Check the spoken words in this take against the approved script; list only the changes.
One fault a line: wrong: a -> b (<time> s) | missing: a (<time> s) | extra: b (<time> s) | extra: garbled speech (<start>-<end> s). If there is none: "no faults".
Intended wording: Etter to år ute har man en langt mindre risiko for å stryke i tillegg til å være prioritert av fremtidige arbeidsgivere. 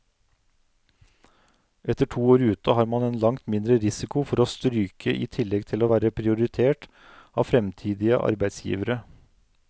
no faults